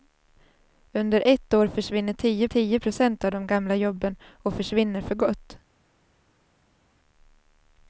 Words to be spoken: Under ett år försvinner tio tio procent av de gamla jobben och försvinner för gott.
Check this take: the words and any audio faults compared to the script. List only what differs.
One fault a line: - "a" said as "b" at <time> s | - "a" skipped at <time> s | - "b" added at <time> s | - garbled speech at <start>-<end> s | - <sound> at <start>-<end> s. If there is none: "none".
none